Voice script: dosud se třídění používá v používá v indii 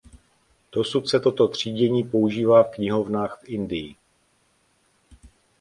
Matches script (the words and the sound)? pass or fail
fail